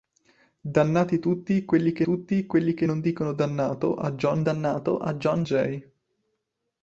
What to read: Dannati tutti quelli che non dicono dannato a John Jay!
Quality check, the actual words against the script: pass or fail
fail